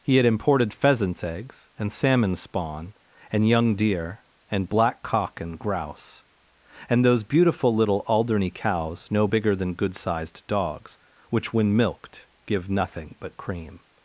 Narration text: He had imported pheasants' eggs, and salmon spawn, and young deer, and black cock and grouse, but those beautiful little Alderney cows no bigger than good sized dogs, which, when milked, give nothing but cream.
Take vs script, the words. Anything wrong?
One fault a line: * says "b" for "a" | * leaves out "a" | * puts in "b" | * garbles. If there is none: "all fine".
* says "and" for "but"